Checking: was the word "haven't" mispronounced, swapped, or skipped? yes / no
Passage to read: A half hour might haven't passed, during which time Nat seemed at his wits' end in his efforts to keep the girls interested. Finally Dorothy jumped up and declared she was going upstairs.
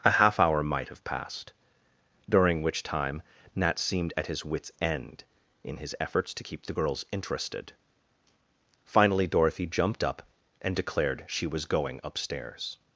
yes